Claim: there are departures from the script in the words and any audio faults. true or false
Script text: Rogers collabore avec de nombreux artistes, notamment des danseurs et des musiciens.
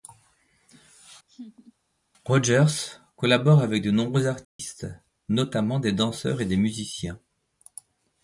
true